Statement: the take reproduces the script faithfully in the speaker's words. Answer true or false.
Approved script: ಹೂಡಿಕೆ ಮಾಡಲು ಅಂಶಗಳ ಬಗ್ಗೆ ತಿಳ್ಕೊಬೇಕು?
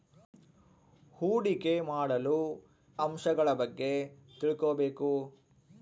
true